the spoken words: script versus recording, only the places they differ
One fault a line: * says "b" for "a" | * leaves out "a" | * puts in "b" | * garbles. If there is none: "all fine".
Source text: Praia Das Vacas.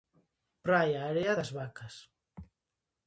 * puts in "Area"